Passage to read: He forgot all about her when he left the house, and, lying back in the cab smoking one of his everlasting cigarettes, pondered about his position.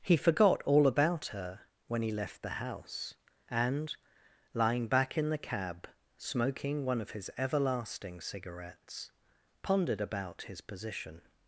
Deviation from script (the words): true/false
false